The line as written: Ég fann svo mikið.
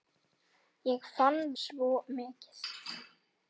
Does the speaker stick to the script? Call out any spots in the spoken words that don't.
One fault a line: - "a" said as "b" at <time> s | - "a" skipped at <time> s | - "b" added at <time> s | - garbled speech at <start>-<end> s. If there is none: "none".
none